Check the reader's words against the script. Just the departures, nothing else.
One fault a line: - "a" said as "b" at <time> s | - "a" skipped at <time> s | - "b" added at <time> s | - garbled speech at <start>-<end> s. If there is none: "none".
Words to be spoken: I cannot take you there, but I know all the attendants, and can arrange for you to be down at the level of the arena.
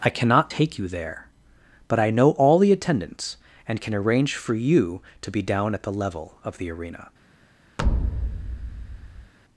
none